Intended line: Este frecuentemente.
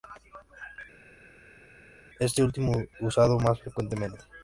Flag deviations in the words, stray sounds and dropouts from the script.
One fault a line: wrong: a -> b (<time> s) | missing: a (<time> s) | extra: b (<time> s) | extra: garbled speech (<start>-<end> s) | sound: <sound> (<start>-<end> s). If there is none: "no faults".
extra: último usado más (2.4 s)